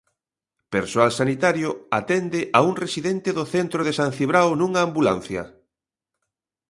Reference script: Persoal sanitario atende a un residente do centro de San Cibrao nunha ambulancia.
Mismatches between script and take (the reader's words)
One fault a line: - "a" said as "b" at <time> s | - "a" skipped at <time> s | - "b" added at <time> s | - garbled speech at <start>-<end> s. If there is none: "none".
none